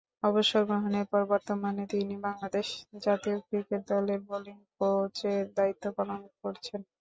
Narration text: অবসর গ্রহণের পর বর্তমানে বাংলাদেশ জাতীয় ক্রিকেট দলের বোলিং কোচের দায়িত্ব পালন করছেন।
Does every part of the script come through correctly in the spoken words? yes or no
no